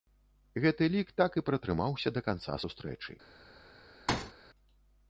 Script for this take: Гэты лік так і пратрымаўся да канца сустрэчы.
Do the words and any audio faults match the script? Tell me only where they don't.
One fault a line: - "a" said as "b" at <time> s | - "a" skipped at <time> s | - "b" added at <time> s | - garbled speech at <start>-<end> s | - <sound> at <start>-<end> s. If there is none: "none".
- thud at 4.1-4.3 s